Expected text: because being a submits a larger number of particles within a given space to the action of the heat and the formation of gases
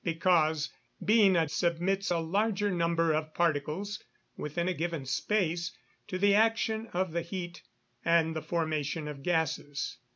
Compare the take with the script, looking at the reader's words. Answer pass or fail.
pass